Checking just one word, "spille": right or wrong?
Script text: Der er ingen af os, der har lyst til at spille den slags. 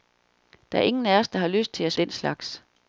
wrong